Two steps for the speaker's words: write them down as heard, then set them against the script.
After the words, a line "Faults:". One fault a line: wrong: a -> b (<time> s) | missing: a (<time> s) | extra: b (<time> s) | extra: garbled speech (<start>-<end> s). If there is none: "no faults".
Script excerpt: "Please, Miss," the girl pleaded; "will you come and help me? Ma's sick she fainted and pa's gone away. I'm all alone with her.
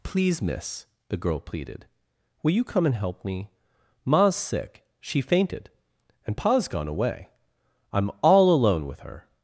"Please, Miss," the girl pleaded; "will you come and help me? Ma's sick she fainted and pa's gone away. I'm all alone with her.
Faults:
no faults